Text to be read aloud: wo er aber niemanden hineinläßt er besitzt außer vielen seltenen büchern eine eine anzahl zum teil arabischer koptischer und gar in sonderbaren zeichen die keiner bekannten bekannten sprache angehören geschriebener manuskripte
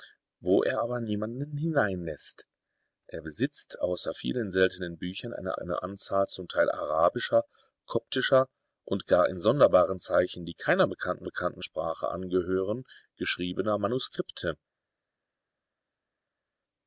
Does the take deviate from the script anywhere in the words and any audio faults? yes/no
no